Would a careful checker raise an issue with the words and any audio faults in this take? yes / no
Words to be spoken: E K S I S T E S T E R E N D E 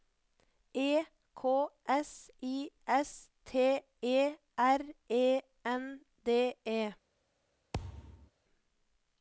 yes